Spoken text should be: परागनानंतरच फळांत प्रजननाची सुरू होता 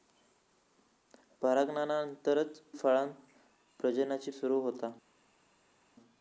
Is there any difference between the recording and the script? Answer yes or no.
no